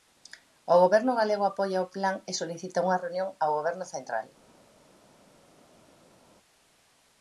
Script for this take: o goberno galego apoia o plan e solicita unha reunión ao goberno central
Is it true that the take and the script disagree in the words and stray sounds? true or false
false